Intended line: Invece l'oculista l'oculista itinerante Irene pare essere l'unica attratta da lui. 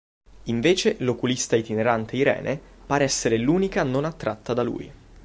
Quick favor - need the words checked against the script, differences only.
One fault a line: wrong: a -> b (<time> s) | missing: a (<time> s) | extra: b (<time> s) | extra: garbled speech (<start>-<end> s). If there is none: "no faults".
missing: l'oculista (1.6 s)
extra: non (3.8 s)